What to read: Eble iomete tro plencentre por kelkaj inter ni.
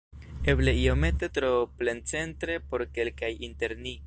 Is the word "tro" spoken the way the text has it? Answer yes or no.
yes